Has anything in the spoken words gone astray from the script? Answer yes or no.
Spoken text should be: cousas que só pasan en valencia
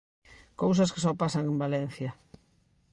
no